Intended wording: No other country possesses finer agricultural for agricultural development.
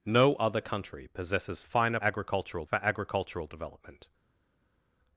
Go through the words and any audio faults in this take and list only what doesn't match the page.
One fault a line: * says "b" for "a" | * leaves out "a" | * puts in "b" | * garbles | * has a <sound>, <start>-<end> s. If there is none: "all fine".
all fine